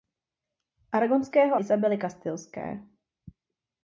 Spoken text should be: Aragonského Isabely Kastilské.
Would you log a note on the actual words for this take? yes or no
no